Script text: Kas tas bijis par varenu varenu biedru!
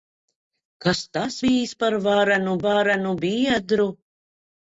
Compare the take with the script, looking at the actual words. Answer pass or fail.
pass